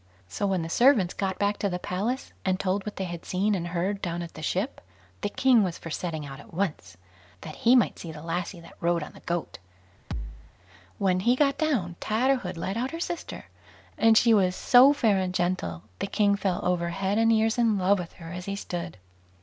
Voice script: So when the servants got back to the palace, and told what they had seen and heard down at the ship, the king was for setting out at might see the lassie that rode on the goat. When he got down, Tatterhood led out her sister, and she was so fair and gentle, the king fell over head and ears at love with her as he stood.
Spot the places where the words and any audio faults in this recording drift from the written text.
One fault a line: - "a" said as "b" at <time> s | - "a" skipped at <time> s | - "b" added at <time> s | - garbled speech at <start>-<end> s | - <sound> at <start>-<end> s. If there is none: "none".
- "once that he" added at 6.5 s
- thud at 10.1-10.5 s
- "at" said as "in" at 17.6 s